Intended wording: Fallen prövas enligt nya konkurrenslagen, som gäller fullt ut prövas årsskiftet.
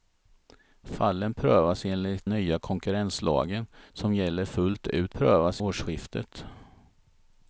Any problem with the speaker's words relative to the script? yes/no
no